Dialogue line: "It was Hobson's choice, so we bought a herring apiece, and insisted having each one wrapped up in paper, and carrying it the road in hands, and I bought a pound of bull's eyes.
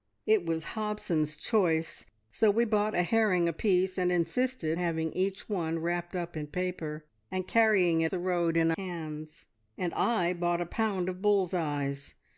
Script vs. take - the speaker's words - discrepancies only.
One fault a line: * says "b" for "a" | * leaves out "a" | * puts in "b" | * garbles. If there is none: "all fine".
all fine